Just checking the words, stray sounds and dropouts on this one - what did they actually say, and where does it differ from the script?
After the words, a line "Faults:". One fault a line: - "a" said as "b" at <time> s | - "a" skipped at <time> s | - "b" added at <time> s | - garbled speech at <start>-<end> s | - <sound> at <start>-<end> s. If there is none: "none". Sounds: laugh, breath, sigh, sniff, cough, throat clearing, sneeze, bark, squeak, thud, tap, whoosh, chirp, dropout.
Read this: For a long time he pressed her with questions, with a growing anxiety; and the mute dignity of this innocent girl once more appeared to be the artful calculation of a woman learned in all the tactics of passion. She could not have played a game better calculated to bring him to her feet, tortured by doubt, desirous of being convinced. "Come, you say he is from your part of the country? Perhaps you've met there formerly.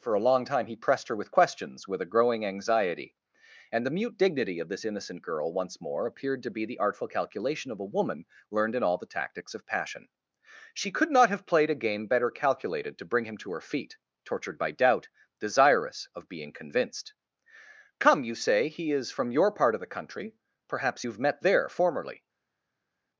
For a long time he pressed her with questions, with a growing anxiety; and the mute dignity of this innocent girl once more appeared to be the artful calculation of a woman learned in all the tactics of passion. She could not have played a game better calculated to bring him to her feet, tortured by doubt, desirous of being convinced. "Come, you say he is from your part of the country? Perhaps you've met there formerly.
Faults:
none